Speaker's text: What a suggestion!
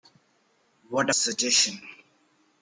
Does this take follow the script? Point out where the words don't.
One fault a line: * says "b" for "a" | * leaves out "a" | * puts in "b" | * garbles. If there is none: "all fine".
all fine